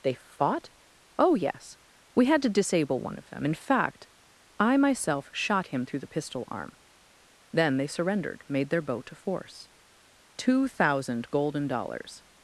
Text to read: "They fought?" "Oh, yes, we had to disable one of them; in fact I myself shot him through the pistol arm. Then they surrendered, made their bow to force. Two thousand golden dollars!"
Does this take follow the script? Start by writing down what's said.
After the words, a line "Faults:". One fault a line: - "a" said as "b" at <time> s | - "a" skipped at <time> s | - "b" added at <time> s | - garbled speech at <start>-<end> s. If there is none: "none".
"They fought?" "Oh, yes, we had to disable one of them; in fact I myself shot him through the pistol arm. Then they surrendered, made their bow to force. Two thousand golden dollars!"
Faults:
none